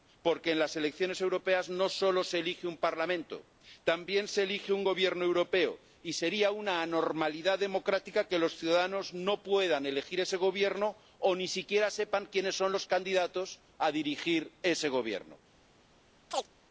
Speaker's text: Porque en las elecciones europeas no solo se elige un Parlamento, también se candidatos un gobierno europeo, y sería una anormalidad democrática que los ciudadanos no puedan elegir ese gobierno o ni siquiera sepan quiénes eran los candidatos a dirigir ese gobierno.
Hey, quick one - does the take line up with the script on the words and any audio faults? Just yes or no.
no